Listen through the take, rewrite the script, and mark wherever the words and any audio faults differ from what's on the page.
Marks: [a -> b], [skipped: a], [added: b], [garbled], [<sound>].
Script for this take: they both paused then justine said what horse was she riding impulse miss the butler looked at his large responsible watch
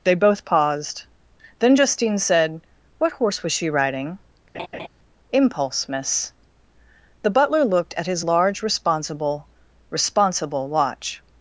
they both paused then justine said what horse was she riding [laugh] impulse miss the butler looked at his large responsible [added: responsible] watch